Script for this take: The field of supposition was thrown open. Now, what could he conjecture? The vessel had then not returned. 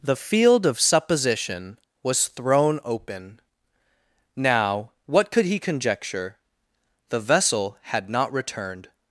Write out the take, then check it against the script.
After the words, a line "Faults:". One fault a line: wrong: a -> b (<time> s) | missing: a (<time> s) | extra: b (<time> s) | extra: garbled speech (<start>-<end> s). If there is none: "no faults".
The field of supposition was thrown open. Now, what could he conjecture? The vessel had not returned.
Faults:
missing: then (8.1 s)